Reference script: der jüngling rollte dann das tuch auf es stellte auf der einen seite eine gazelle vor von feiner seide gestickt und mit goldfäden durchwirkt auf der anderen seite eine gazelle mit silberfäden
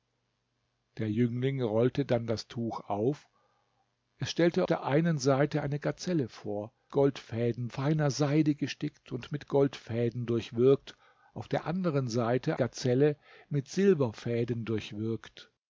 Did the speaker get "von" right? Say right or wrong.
wrong